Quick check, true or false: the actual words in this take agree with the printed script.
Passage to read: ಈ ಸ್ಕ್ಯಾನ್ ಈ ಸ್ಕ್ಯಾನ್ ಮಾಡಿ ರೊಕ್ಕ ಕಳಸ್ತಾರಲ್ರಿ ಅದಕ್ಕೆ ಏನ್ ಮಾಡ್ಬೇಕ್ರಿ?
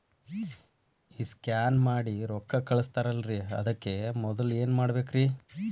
false